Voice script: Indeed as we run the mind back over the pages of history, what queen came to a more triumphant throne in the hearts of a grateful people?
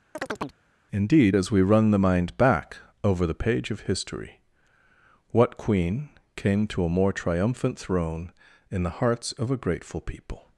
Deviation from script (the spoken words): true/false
true